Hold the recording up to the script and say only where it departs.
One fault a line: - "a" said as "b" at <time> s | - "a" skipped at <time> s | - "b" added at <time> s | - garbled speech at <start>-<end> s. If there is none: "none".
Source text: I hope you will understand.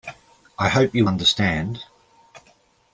- "will" skipped at 1.1 s